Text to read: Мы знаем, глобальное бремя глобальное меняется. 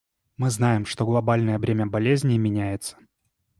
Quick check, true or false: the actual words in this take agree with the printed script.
false